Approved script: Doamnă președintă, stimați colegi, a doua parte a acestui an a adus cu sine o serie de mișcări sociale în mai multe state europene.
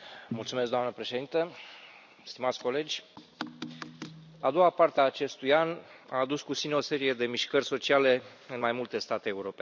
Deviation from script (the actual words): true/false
false